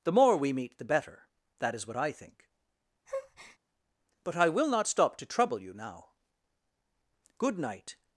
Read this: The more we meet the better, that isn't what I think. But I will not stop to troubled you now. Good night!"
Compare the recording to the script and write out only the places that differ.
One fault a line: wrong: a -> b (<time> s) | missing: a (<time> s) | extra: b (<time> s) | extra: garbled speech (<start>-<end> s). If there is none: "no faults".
wrong: isn't -> is (1.8 s)
wrong: troubled -> trouble (5.2 s)